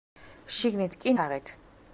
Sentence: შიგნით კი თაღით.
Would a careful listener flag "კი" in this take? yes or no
no